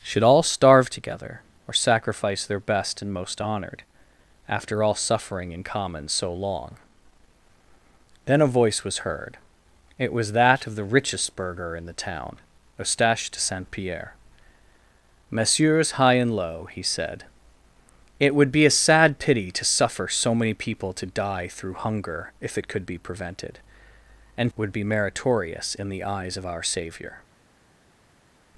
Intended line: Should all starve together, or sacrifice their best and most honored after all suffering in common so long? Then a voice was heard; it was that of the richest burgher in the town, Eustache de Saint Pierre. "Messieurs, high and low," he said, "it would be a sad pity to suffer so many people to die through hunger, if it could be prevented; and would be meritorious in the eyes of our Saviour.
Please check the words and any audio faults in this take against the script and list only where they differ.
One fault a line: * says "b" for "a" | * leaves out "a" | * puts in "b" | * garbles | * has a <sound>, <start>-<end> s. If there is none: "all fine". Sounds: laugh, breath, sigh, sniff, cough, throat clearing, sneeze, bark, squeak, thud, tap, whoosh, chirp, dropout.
all fine